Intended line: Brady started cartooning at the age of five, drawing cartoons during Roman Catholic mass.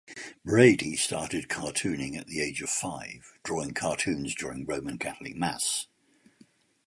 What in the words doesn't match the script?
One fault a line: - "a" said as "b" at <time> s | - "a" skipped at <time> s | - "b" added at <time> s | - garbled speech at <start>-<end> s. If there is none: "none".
none